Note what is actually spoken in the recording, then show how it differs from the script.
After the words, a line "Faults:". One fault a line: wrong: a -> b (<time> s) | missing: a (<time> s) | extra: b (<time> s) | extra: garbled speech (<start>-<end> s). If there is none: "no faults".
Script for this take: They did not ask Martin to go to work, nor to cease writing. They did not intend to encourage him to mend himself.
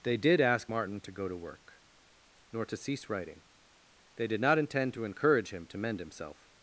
They did ask Martin to go to work, nor to cease writing. They did not intend to encourage him to mend himself.
Faults:
missing: not (0.4 s)